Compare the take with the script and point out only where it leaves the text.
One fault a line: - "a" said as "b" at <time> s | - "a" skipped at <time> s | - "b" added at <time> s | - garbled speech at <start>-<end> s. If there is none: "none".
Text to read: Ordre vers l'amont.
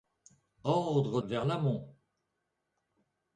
none